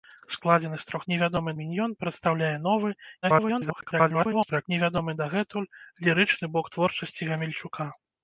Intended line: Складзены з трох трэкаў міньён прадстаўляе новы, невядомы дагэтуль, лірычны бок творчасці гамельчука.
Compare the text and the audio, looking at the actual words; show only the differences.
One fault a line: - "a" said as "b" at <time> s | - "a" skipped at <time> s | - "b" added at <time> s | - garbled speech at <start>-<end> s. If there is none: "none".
- "трэкаў" said as "невядомы" at 1.1 s
- garbled speech at 3.2-4.7 s